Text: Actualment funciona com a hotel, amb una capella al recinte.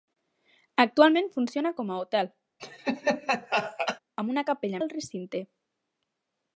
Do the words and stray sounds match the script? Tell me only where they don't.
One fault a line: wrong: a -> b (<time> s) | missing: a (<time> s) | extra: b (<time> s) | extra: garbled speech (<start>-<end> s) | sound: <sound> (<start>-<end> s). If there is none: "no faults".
sound: laugh (2.6-4.0 s)